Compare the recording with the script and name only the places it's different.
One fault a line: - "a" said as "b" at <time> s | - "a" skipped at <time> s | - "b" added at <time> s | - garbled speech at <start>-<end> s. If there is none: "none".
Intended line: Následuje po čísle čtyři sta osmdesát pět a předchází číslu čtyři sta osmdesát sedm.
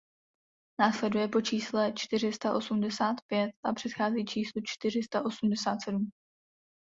none